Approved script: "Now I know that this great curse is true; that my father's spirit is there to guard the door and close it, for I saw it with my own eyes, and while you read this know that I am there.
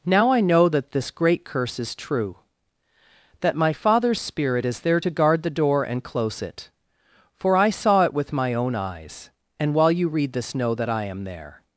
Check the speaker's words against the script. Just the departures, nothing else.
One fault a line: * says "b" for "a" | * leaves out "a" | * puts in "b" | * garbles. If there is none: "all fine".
all fine